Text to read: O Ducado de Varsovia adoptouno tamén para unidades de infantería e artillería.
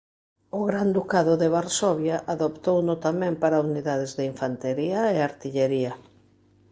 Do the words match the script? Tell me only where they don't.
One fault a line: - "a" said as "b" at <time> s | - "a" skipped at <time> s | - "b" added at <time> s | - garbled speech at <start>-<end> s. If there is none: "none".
- "Gran" added at 0.7 s